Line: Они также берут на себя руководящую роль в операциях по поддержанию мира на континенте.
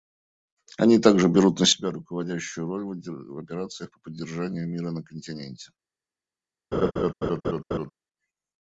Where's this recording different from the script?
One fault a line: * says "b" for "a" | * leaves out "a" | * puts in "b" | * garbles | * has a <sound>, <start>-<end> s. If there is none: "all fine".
* has a laugh, 6.7-7.9 s